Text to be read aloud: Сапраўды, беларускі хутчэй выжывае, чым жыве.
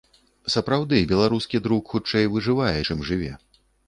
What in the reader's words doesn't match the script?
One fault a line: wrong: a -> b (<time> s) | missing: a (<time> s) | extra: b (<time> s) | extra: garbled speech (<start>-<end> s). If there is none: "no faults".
extra: друк (1.7 s)